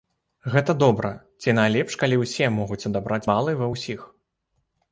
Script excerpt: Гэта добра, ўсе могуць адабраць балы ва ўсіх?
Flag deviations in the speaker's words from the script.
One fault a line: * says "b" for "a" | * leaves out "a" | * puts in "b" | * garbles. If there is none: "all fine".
* puts in "ці найлепш калі"